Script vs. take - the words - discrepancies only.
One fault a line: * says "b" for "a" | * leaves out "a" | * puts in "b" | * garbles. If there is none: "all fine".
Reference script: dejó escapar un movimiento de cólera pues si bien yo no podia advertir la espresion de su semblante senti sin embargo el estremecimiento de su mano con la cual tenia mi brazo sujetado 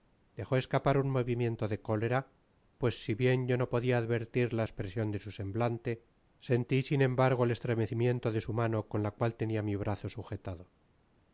all fine